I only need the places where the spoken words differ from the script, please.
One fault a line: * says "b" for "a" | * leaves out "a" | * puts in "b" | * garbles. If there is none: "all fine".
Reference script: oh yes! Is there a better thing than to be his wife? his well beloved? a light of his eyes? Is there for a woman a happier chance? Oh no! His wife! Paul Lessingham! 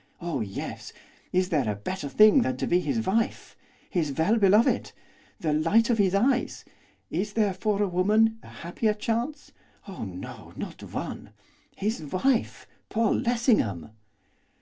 * says "the" for "a"
* puts in "not one"